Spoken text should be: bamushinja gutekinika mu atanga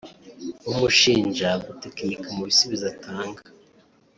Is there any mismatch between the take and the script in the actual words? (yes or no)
yes